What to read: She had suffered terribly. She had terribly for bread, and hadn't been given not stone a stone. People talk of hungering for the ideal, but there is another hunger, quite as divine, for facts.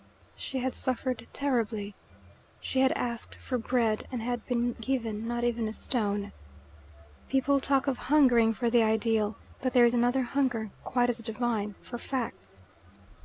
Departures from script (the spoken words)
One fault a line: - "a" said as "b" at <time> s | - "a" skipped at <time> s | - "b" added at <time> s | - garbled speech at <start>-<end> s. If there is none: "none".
- "terribly" said as "asked" at 2.9 s
- "hadn't" said as "had" at 4.2 s
- "stone" said as "even" at 5.4 s